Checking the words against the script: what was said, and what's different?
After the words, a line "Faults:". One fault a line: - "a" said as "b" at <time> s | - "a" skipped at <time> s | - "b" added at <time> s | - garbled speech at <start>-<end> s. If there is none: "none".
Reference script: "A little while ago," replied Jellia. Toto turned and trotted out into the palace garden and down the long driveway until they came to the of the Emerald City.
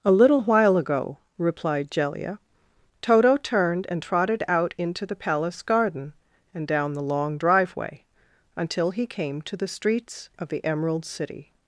"A little while ago," replied Jellia. Toto turned and trotted out into the palace garden and down the long driveway until he came to the streets of the Emerald City.
Faults:
- "they" said as "he" at 8.9 s
- "streets" added at 9.7 s